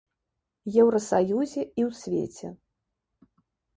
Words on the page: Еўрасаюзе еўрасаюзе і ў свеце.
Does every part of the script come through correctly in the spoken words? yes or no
no